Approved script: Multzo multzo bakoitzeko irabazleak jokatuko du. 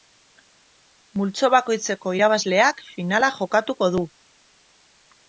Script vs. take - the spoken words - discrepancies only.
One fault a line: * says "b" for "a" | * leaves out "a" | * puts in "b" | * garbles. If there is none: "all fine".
* leaves out "multzo"
* puts in "finala"